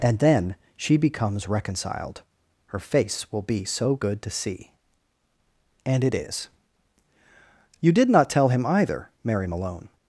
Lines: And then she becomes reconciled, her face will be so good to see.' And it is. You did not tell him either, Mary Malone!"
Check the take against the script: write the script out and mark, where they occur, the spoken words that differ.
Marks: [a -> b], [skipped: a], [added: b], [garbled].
And then she becomes reconciled, her face will be so good to see.' And it is. You did not tell him either, Mary Malone!"